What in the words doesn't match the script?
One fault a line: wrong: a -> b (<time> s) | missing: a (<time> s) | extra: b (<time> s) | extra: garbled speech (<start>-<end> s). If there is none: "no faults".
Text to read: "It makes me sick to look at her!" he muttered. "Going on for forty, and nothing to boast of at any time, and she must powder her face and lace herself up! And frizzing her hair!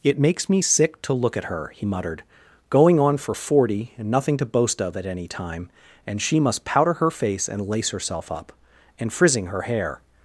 no faults